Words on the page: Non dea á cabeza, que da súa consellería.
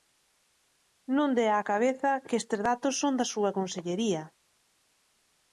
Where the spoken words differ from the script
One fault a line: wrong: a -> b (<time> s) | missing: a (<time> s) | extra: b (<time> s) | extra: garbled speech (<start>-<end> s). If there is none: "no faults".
extra: estes datos son (2.4 s)